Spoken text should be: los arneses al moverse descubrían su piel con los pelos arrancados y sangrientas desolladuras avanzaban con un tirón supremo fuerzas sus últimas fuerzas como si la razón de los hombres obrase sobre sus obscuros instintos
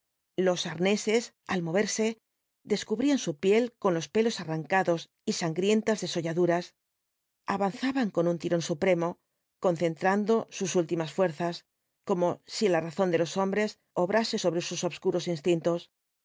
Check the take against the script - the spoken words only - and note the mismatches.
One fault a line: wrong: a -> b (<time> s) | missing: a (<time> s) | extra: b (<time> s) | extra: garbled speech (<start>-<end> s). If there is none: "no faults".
wrong: fuerzas -> concentrando (9.6 s)